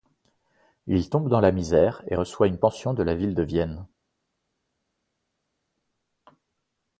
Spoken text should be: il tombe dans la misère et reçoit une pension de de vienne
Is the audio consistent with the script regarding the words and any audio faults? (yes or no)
no